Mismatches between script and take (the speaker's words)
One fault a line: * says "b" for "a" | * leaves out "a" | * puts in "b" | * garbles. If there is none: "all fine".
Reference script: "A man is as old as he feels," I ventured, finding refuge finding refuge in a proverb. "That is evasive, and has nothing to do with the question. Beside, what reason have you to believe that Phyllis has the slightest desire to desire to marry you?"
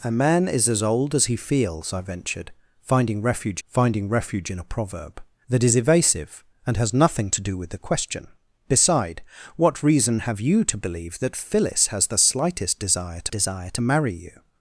all fine